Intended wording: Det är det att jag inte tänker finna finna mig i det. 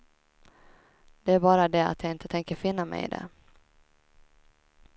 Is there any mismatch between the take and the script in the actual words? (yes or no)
yes